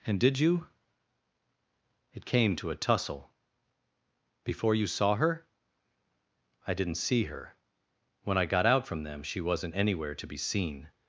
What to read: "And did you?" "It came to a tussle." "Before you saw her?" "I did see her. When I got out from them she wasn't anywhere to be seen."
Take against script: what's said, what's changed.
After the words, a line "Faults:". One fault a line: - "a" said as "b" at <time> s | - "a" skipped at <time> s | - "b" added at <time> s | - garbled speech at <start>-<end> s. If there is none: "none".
"And did you?" "It came to a tussle." "Before you saw her?" "I didn't see her. When I got out from them she wasn't anywhere to be seen."
Faults:
- "did" said as "didn't" at 6.7 s